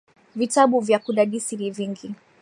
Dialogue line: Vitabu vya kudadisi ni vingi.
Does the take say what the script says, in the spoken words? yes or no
yes